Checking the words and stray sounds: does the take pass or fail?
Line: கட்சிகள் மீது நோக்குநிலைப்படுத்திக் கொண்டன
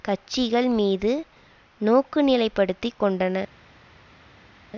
pass